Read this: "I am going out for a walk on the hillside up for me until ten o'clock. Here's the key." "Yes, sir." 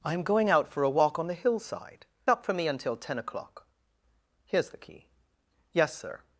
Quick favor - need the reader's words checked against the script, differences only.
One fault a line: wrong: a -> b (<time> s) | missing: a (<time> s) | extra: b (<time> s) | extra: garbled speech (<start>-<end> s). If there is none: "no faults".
no faults